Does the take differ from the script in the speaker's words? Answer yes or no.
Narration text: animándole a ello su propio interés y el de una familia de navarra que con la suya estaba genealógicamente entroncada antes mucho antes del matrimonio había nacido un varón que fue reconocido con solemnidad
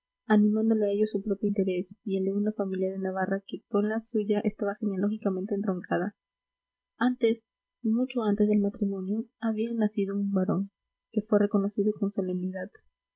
no